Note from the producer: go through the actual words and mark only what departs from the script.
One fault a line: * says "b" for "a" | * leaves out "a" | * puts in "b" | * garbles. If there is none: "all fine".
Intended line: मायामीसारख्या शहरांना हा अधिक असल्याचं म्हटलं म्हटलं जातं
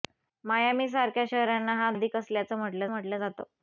all fine